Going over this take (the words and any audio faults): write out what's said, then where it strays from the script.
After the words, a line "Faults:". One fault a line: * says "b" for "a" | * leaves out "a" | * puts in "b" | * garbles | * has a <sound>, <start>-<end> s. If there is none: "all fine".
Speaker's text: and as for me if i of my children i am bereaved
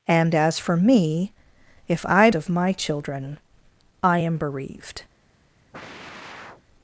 and as for me if i of my children i am bereaved
Faults:
* has a sigh, 5.7-6.6 s